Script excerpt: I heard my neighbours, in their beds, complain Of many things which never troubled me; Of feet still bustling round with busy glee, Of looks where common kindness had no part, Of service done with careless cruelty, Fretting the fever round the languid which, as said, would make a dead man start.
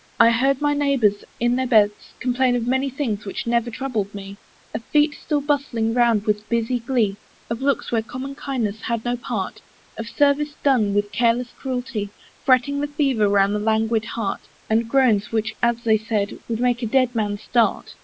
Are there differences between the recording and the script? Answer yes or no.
yes